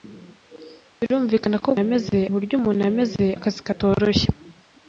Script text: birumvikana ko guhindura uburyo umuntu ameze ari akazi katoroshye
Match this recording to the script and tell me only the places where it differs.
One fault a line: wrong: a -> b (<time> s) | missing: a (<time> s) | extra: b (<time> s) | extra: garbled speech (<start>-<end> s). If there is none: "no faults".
wrong: guhindura -> ameze (1.8 s)
missing: ari (3.2 s)